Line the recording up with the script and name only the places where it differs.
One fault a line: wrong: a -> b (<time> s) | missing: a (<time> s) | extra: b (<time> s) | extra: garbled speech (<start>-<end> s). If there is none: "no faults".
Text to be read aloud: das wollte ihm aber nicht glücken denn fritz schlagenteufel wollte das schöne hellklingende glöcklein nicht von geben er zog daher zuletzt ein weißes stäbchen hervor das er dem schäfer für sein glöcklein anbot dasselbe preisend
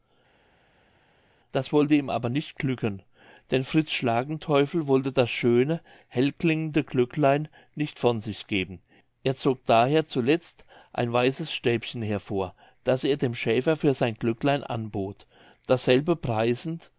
extra: sich (8.2 s)